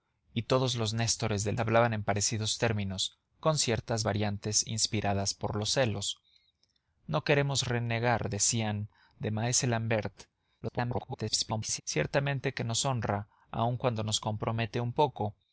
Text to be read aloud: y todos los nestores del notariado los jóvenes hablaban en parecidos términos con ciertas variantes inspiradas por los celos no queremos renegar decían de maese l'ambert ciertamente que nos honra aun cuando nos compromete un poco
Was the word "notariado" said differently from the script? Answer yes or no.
yes